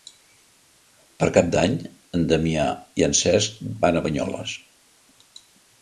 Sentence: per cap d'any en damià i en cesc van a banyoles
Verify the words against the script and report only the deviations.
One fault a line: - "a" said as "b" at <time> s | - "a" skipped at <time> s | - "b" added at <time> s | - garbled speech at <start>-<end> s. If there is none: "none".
none